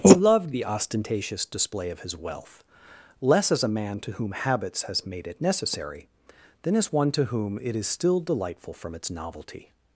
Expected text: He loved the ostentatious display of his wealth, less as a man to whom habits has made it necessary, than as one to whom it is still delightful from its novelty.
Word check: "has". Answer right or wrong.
right